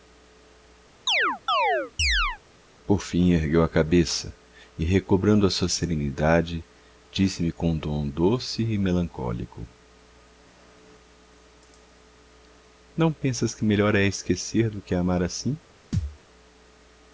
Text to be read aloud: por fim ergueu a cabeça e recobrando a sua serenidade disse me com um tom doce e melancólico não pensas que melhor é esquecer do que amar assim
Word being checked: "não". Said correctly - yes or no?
yes